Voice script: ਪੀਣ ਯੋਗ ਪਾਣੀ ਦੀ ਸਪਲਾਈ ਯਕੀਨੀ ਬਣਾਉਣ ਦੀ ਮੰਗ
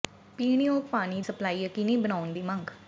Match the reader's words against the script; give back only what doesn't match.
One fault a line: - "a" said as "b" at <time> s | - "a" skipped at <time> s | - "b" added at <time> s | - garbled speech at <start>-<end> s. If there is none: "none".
- "ਦੀ" skipped at 1.2 s